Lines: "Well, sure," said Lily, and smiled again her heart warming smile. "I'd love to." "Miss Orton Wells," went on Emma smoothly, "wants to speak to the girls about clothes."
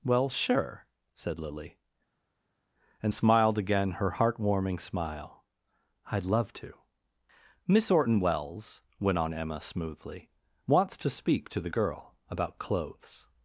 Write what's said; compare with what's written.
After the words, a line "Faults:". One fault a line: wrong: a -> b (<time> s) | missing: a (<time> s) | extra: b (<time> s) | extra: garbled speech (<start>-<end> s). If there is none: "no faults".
"Well, sure," said Lily, and smiled again her heart warming smile. "I'd love to." "Miss Orton Wells," went on Emma smoothly, "wants to speak to the girl about clothes."
Faults:
wrong: girls -> girl (11.7 s)